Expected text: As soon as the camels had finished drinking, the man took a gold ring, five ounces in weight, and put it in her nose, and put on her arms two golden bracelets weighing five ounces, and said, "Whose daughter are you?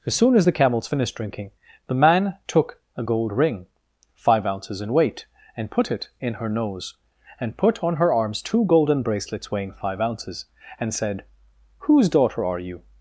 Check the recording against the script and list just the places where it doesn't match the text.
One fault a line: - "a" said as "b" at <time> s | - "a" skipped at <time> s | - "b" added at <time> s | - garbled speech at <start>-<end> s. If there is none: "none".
- "had" skipped at 0.9 s